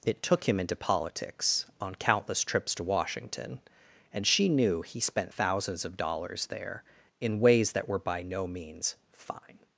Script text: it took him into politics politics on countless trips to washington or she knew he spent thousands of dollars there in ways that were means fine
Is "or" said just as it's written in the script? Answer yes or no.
no